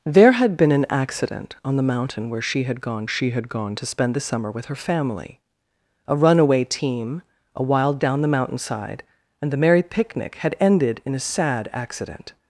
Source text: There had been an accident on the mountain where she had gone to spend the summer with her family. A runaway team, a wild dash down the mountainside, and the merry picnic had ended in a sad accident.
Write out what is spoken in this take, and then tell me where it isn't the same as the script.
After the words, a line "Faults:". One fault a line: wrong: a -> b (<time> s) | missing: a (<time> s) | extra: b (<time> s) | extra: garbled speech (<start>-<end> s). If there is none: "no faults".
There had been an accident on the mountain where she had gone she had gone to spend the summer with her family. A runaway team, a wild down the mountainside, and the merry picnic had ended in a sad accident.
Faults:
extra: she had gone (3.1 s)
missing: dash (8.0 s)